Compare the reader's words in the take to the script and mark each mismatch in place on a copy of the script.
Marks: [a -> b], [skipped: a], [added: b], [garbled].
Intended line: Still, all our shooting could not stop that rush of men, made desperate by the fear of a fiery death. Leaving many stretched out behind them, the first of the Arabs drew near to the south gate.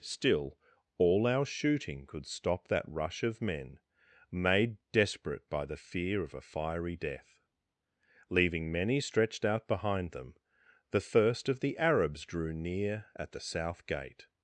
Still, all our shooting could [skipped: not] stop that rush of men, made desperate by the fear of a fiery death. Leaving many stretched out behind them, the first of the Arabs drew near [to -> at] the south gate.